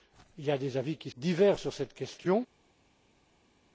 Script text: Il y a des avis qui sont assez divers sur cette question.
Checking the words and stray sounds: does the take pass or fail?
fail